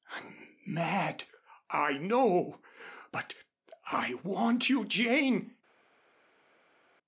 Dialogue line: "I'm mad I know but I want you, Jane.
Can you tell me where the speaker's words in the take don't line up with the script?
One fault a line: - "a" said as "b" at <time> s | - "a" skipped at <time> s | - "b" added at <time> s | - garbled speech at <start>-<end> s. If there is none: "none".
none